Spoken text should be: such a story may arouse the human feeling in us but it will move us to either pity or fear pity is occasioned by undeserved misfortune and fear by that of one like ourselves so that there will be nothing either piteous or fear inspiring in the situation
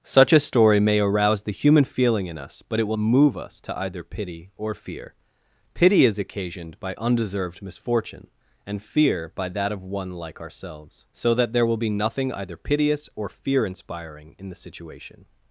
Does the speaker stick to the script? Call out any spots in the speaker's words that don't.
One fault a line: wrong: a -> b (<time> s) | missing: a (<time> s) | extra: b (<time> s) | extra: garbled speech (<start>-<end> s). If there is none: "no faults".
no faults